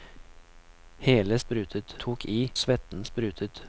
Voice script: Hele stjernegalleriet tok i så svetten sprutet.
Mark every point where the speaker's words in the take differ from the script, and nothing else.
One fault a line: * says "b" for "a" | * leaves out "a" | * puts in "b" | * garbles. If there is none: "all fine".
* says "sprutet" for "stjernegalleriet"
* leaves out "så"